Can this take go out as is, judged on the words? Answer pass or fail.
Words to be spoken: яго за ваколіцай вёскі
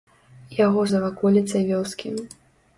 pass